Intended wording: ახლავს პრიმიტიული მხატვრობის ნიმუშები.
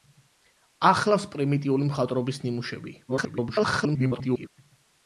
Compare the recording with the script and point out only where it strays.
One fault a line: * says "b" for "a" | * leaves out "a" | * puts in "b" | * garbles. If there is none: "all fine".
* garbles